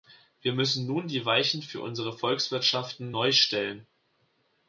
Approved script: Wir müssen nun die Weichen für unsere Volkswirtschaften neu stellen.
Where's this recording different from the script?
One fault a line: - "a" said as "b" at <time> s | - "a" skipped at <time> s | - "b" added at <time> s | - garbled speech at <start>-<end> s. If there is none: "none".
none